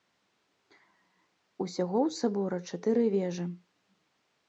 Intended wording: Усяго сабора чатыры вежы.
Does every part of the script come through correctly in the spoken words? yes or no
no